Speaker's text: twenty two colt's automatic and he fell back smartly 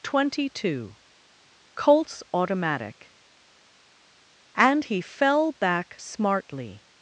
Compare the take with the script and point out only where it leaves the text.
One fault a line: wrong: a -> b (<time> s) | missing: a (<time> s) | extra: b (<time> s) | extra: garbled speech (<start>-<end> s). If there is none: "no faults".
no faults